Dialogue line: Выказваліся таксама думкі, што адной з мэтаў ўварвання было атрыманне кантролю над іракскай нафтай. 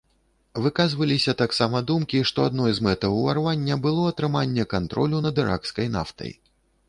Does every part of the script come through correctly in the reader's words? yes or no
yes